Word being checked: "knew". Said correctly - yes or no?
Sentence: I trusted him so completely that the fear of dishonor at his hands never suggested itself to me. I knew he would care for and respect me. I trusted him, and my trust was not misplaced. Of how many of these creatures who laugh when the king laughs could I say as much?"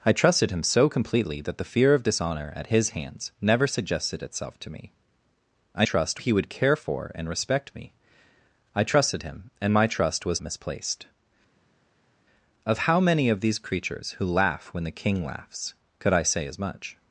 no